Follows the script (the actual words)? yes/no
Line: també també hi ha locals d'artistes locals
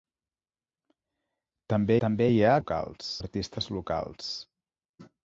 yes